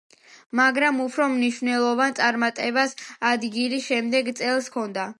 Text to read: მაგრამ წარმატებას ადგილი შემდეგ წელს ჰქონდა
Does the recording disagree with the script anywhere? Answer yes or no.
yes